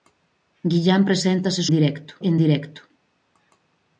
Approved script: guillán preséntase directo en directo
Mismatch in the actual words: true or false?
false